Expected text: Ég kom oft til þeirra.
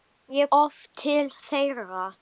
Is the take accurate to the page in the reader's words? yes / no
no